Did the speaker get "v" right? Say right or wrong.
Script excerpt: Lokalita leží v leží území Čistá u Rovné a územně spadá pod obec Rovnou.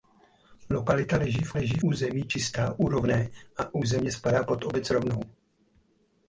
right